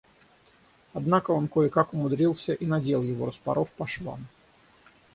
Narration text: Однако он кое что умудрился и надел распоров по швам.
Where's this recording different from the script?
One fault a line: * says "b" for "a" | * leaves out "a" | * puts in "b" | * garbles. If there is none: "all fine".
* says "как" for "что"
* puts in "его"